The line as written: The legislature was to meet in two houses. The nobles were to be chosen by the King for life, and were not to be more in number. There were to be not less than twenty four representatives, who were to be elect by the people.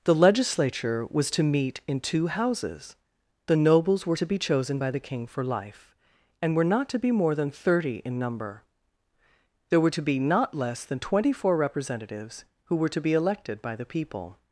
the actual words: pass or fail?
fail